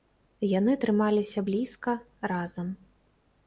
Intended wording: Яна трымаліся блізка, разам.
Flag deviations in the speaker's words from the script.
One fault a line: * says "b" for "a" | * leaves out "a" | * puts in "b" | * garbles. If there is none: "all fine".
* says "Яны" for "Яна"